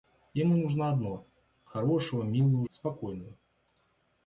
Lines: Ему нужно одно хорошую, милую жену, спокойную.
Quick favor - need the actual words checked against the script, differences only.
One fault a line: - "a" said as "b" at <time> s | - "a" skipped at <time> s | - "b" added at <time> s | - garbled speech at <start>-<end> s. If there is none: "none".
- "жену" skipped at 2.6 s